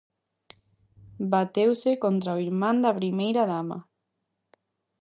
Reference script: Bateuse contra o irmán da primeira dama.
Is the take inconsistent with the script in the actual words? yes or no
no